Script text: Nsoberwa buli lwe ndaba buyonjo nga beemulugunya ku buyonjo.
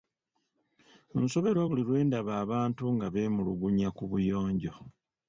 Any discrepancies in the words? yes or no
yes